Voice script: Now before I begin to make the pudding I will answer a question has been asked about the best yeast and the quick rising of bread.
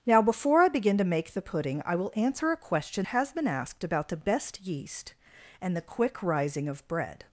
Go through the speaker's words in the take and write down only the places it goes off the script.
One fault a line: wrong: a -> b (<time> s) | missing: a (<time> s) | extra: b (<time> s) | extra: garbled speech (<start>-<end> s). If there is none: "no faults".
no faults